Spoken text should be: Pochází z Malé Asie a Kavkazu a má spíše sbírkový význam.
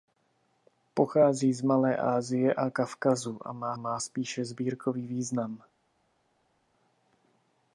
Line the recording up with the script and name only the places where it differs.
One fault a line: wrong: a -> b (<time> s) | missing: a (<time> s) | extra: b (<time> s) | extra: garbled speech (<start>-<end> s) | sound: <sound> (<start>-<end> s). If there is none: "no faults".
extra: má (3.8 s)